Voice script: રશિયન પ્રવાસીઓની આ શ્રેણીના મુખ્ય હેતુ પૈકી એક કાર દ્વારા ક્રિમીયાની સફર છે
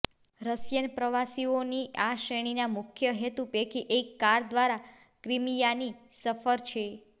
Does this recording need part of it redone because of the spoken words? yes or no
no